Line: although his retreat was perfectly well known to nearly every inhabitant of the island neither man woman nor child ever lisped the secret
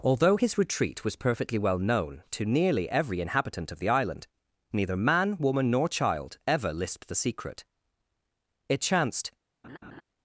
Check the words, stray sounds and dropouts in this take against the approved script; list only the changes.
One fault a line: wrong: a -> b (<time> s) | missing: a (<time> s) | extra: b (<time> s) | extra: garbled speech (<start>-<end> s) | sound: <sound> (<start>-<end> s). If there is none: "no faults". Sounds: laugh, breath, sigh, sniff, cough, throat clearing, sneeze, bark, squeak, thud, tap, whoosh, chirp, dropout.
extra: it chanced (8.7 s)
sound: laugh (9.6-10.0 s)